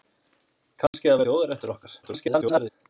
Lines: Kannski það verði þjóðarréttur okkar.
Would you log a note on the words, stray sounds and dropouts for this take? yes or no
yes